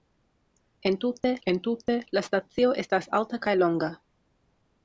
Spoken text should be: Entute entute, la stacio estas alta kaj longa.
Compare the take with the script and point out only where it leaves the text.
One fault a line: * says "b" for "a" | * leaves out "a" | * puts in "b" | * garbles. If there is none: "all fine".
all fine